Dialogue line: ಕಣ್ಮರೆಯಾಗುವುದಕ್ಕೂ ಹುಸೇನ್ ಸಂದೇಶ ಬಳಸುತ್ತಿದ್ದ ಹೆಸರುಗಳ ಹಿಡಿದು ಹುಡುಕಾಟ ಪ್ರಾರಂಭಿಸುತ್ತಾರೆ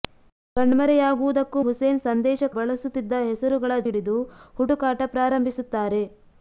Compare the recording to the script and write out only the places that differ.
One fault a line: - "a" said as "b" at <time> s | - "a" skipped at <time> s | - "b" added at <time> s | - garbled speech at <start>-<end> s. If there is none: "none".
none